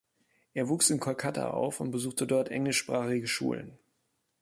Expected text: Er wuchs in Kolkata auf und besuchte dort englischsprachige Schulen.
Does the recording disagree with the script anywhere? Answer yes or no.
no